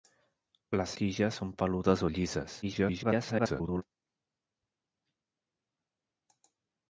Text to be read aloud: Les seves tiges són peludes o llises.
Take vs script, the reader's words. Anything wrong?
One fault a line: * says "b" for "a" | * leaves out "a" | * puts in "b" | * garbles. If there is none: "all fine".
* leaves out "seves"
* garbles